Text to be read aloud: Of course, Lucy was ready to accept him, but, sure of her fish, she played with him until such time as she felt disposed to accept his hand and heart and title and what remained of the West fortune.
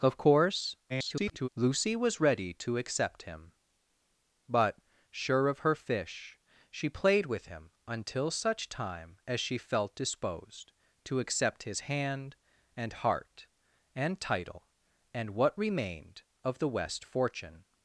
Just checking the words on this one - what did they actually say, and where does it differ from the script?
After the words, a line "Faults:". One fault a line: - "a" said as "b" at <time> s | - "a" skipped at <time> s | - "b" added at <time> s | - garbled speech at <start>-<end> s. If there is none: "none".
Of course, [garbled] Lucy was ready to accept him, but, sure of her fish, she played with him until such time as she felt disposed to accept his hand and heart and title and what remained of the West fortune.
Faults:
- garbled speech at 0.9-1.5 s